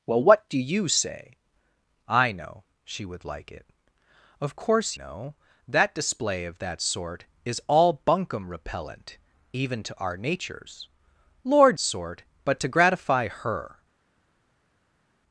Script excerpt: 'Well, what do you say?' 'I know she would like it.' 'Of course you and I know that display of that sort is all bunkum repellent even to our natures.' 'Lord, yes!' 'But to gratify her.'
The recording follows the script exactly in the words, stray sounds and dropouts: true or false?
false